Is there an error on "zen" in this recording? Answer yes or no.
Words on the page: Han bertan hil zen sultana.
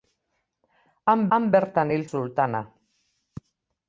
yes